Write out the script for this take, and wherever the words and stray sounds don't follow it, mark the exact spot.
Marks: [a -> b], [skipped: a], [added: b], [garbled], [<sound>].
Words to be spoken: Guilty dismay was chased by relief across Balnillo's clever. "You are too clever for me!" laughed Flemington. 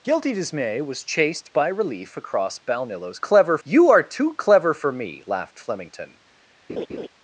Guilty dismay was chased by relief across Balnillo's clever. "You are too clever for me!" laughed Flemington. [laugh]